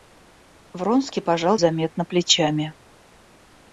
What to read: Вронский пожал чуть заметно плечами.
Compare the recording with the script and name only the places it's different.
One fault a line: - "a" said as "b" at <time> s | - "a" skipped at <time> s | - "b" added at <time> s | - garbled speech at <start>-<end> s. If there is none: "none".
- "чуть" skipped at 1.6 s